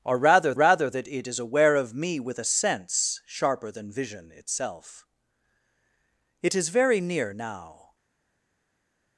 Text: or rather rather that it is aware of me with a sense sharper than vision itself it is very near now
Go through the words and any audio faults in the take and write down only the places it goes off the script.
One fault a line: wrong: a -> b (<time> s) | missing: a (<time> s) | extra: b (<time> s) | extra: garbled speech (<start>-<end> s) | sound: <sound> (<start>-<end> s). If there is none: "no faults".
no faults